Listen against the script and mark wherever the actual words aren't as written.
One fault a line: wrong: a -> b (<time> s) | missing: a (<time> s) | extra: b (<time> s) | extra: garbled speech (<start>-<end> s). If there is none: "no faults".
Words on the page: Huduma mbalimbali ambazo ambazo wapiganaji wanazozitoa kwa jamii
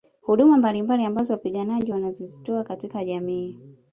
missing: ambazo (1.3 s)
wrong: kwa -> katika (2.6 s)